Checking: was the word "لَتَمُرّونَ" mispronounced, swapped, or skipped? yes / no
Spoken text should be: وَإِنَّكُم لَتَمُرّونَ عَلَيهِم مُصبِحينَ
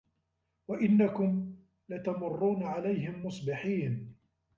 no